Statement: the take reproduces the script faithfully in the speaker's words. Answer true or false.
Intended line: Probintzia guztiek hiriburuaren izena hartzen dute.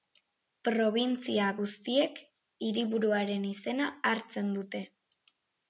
true